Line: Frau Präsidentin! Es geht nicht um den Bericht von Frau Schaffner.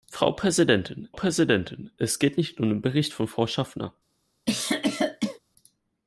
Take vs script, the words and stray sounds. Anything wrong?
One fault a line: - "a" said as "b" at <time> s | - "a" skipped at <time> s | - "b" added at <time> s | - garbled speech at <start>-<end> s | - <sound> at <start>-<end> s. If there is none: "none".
- "Präsidentin" added at 1.1 s
- cough at 4.5-5.4 s